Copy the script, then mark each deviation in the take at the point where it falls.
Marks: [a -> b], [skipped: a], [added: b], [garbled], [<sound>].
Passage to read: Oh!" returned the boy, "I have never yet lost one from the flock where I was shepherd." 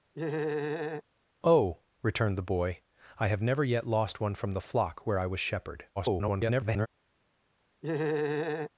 [laugh] Oh!" returned the boy, "I have never yet lost one from the flock where I was shepherd." [garbled] [laugh]